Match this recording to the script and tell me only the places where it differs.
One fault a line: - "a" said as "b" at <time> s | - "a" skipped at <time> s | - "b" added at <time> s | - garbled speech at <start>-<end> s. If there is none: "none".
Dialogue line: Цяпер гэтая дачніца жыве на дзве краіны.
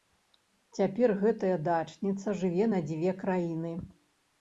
none